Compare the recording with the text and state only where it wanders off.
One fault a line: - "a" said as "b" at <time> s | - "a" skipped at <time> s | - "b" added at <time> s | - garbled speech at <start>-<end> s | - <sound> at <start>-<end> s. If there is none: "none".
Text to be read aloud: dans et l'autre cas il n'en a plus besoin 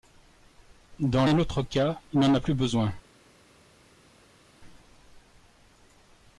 none